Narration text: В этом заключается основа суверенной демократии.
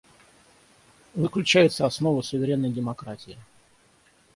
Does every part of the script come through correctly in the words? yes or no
no